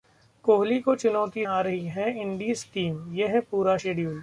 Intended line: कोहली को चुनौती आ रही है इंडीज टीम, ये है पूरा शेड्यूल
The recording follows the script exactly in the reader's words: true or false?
true